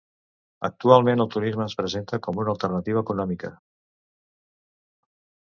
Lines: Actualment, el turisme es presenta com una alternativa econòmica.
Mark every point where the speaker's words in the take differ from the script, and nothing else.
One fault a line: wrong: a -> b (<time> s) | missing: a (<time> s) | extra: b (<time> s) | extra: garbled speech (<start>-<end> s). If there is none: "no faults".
no faults